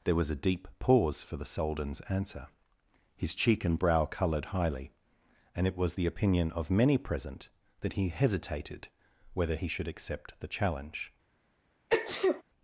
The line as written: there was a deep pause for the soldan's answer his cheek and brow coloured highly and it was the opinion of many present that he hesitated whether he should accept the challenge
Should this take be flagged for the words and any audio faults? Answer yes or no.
yes